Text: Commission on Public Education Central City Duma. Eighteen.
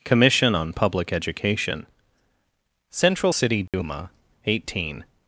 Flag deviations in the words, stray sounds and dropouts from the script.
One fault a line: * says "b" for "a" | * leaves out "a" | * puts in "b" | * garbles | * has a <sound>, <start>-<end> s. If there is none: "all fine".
* has a dropout, 3.7-3.7 s